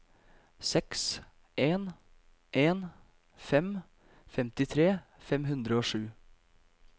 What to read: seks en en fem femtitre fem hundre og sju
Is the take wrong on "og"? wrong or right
right